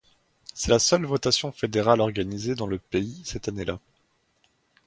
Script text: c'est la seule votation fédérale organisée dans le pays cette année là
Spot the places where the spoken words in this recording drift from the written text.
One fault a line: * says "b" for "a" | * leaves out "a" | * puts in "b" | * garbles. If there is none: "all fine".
all fine